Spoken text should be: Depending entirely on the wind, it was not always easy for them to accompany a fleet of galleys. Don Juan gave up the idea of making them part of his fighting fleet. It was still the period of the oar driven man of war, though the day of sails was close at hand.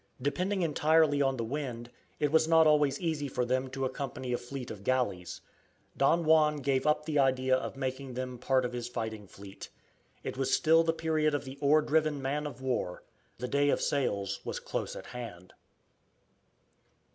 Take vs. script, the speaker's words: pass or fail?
fail